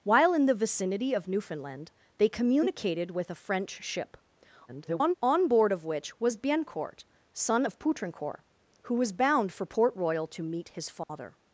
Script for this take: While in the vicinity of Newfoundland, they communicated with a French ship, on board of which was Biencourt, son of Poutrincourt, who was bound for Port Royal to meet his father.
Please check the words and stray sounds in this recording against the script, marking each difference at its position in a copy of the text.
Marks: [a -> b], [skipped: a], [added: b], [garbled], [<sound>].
While in the vicinity of Newfoundland, they communicated with a French ship, [garbled] on board of which was Biencourt, son of Poutrincourt, who was bound for Port Royal to meet his father. [dropout]